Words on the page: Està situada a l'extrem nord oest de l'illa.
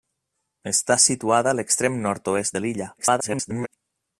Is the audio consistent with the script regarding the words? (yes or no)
no